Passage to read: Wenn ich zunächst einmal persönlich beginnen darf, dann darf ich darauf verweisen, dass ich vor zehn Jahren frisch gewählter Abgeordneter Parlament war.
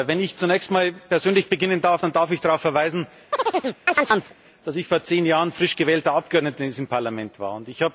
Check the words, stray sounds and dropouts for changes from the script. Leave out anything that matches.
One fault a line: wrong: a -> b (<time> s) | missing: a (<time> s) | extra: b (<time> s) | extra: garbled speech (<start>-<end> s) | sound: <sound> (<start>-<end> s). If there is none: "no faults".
sound: chirp (3.3-4.3 s)
extra: in diesem (6.6 s)